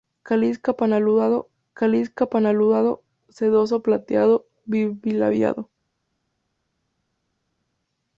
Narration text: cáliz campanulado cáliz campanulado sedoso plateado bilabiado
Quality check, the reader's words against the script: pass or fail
pass